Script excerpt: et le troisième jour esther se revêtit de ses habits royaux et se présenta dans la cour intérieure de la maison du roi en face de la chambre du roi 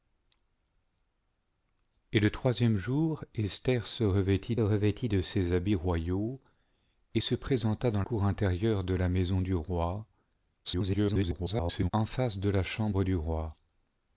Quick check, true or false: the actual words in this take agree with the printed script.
false